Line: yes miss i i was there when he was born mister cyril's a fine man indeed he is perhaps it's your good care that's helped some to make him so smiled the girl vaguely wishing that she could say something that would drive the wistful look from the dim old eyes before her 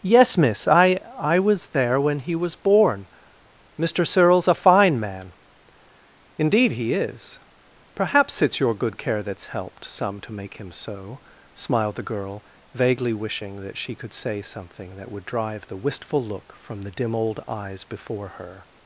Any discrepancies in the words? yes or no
no